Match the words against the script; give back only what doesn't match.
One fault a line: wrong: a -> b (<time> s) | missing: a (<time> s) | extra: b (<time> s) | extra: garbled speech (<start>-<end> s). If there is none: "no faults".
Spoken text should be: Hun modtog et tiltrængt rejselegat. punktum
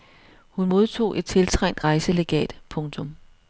no faults